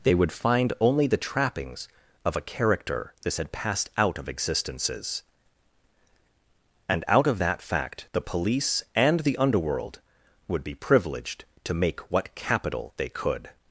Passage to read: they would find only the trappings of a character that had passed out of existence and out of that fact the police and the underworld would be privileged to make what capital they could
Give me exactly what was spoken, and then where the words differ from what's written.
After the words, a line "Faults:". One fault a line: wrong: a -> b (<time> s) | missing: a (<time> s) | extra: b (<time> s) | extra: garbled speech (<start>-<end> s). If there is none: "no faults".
they would find only the trappings of a character this had passed out of existences and out of that fact the police and the underworld would be privileged to make what capital they could
Faults:
wrong: that -> this (3.2 s)
wrong: existence -> existences (4.3 s)